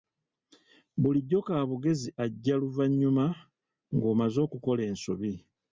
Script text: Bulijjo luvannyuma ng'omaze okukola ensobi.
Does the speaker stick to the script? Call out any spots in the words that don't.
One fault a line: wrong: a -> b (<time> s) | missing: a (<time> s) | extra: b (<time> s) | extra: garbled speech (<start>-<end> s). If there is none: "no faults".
extra: kaabugezi ajja (1.5 s)